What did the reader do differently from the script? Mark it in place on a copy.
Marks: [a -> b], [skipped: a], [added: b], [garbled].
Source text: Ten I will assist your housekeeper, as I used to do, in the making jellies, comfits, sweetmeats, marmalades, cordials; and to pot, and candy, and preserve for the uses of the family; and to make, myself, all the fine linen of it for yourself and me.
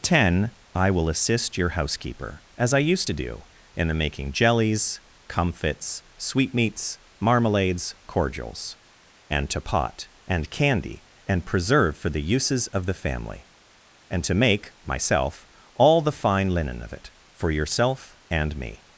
Ten I will assist your housekeeper, as I used to do, in the making jellies, comfits, sweetmeats, marmalades, cordials; and to pot, and candy, and preserve for the uses of the family; and to make, myself, all the fine linen of it for yourself and me.